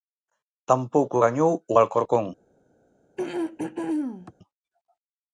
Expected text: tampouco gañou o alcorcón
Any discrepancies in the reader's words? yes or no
no